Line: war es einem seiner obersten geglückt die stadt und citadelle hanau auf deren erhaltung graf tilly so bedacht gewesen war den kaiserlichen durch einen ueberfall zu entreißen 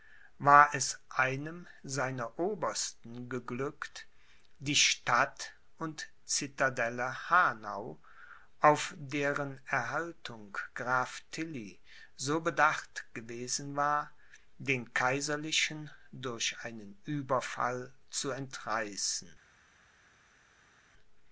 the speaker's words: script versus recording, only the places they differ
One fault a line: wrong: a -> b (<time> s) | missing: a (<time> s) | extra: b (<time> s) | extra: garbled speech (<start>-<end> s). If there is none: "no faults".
no faults